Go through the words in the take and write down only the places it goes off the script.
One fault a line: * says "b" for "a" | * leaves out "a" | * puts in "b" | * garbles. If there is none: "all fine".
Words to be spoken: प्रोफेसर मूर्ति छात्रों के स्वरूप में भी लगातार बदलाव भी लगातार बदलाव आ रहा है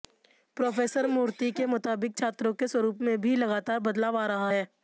* puts in "के मुताबिक"
* leaves out "भी लगातार बदलाव"